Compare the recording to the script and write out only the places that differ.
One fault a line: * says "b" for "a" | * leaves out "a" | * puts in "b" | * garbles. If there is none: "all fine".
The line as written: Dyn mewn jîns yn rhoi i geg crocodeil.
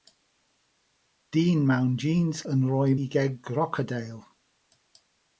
all fine